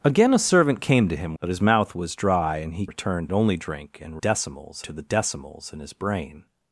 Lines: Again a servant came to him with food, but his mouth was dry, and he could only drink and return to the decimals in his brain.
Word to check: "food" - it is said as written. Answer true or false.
false